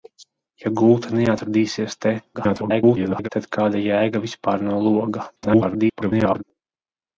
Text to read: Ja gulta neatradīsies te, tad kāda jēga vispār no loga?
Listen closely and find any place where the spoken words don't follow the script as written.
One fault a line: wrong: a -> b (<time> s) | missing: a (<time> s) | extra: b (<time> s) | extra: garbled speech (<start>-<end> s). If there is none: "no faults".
extra: garbled speech (2.3-3.3 s)
extra: garbled speech (5.4-6.4 s)